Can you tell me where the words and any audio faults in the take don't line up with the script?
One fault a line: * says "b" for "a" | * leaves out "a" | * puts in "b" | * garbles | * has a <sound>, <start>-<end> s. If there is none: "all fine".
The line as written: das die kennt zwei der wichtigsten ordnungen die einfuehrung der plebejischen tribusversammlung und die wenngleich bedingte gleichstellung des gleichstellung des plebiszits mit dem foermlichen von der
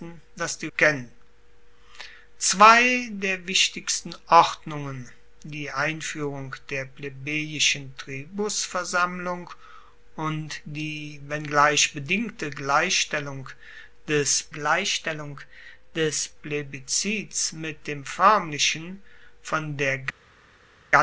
all fine